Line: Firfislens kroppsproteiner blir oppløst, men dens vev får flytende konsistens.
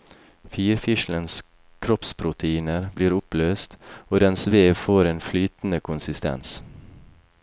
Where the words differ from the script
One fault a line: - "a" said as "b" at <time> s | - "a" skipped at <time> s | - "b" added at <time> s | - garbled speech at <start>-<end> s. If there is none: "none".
- "men" said as "og" at 4.1 s
- "en" added at 5.1 s